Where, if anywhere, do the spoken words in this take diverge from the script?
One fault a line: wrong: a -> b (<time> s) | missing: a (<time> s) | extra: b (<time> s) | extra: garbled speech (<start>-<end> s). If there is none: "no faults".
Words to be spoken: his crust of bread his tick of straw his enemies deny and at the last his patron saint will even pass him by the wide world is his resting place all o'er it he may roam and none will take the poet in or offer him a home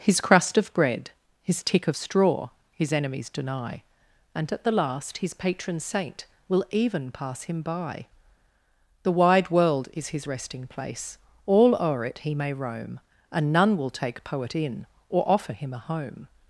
missing: the (14.3 s)